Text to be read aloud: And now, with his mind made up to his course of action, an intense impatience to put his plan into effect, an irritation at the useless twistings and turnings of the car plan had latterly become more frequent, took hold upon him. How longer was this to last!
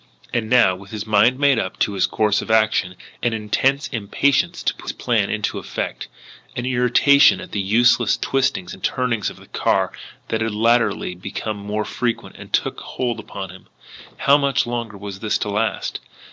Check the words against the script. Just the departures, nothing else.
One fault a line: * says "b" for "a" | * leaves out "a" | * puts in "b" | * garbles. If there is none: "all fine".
* says "that" for "plan"
* puts in "much"